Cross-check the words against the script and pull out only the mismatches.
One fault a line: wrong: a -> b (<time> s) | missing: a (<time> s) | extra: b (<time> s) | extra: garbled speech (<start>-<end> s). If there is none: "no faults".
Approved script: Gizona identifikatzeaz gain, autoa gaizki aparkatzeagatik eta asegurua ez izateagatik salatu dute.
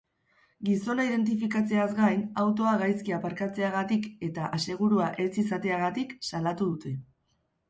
no faults